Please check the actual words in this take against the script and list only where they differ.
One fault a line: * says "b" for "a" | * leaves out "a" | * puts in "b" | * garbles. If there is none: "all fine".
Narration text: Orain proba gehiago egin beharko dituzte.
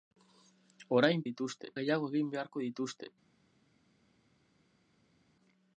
* says "dituzte" for "proba"